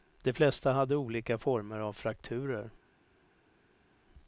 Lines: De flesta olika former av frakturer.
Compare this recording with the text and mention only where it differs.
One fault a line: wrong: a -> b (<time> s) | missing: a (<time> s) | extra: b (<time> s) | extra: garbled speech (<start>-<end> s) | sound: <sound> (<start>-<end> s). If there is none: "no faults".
extra: hade (0.7 s)